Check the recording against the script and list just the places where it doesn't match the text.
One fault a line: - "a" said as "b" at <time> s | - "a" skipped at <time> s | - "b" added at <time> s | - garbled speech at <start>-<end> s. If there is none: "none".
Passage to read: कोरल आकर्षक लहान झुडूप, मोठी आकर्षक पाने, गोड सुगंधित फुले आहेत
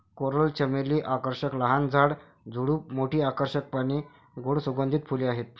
- "चमेली" added at 0.5 s
- "झाड" added at 1.9 s